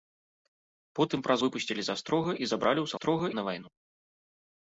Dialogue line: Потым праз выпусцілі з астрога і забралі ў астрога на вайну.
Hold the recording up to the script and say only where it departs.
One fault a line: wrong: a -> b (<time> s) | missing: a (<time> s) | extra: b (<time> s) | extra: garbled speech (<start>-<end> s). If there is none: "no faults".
no faults